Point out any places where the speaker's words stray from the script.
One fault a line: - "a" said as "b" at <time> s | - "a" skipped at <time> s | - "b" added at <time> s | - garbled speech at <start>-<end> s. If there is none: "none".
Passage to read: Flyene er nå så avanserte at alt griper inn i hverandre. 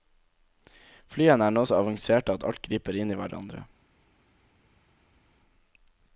none